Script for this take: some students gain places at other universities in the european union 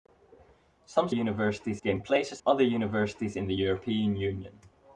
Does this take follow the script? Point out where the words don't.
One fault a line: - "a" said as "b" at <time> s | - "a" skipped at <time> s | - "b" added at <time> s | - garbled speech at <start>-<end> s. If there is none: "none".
- "students" said as "universities" at 1.1 s
- "at" skipped at 2.4 s